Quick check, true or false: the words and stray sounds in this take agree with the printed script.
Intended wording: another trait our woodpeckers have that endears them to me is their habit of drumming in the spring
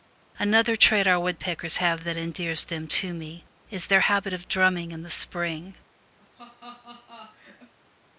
false